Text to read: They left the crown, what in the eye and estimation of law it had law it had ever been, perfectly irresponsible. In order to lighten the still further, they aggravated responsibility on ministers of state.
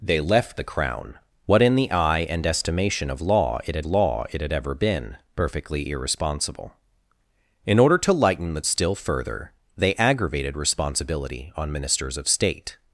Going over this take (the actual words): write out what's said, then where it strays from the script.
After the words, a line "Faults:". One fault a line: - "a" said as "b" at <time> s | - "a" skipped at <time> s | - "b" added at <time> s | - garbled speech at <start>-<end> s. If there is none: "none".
They left the crown, what in the eye and estimation of law it had law it had ever been, perfectly irresponsible. In order to lighten the still further, they aggravated responsibility on ministers of state.
Faults:
none